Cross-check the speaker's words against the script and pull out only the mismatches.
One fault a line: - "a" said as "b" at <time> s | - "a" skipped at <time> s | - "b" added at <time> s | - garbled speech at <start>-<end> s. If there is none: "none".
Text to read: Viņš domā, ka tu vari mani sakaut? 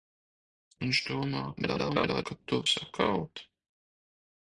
- garbled speech at 1.6-2.2 s
- "vari mani" skipped at 2.6 s